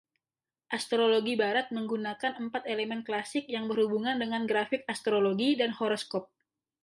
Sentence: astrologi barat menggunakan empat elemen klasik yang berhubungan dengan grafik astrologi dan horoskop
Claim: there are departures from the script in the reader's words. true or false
false